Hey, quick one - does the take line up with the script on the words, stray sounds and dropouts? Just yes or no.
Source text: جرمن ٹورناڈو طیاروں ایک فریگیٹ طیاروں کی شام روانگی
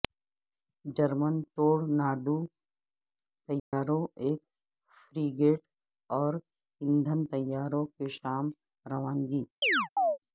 no